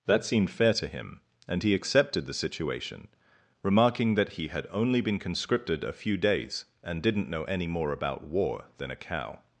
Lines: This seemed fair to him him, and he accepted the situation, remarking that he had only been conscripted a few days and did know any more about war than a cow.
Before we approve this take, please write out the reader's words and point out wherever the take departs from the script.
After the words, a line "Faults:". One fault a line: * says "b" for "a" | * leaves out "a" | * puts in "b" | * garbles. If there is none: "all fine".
That seemed fair to him, and he accepted the situation, remarking that he had only been conscripted a few days and didn't know any more about war than a cow.
Faults:
* says "That" for "This"
* leaves out "him"
* says "didn't" for "did"